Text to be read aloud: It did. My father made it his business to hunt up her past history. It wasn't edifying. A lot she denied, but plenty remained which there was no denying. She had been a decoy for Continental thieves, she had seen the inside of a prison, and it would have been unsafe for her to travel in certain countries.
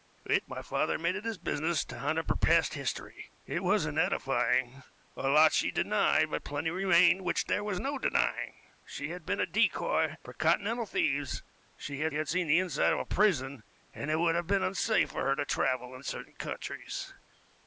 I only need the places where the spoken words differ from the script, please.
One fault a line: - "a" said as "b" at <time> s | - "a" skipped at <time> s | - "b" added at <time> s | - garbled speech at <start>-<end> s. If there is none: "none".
- "did" skipped at 0.5 s
- "had" added at 12.1 s